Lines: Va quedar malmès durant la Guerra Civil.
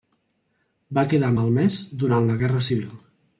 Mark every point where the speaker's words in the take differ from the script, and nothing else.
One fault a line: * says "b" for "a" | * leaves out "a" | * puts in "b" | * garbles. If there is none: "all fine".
all fine